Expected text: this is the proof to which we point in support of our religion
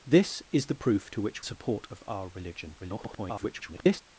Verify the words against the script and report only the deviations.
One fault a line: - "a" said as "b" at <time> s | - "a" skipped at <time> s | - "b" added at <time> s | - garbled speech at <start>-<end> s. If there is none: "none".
- "we point in" skipped at 1.4 s
- garbled speech at 2.8-4.0 s